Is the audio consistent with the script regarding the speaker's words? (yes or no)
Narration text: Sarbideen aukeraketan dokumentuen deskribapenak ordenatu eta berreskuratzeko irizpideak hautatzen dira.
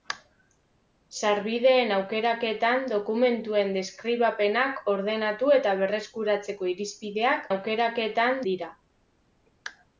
no